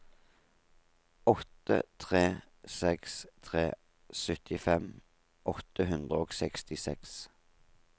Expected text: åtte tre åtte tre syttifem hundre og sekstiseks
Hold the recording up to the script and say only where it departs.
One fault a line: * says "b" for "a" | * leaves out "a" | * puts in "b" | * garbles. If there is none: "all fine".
* says "seks" for "åtte"
* puts in "åtte"